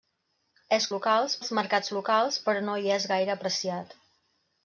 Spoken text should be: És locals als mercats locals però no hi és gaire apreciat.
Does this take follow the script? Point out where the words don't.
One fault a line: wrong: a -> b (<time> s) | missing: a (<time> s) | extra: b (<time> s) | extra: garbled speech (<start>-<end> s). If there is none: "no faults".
no faults